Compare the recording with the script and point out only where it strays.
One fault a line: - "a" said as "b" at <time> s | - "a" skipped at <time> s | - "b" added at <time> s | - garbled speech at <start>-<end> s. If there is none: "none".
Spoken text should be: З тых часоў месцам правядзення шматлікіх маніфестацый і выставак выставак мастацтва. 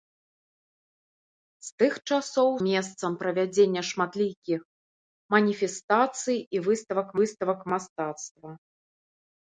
none